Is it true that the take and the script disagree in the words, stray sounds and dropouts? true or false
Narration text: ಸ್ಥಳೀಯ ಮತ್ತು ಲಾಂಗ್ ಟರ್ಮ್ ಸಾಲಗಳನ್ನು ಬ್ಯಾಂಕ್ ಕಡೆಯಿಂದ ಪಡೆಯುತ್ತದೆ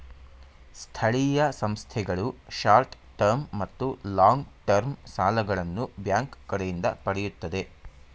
true